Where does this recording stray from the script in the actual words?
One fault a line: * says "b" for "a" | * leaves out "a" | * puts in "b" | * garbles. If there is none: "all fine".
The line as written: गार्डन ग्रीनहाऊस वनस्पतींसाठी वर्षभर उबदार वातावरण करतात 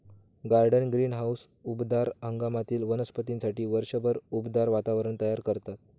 * puts in "उबदार हंगामातील"
* puts in "तयार"